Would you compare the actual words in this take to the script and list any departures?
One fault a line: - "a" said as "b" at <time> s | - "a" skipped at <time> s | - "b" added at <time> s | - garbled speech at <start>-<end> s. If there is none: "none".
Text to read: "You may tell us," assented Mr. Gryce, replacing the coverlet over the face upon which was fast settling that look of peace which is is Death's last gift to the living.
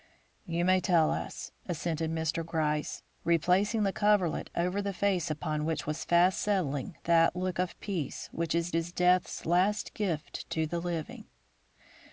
none